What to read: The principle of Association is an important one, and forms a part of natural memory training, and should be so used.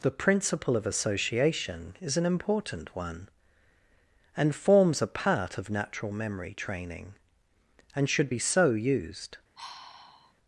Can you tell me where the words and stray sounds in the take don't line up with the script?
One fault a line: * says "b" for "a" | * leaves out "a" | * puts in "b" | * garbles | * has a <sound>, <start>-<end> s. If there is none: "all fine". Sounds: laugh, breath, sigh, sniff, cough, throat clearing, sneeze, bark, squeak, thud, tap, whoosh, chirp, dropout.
* has a sigh, 9.6-10.3 s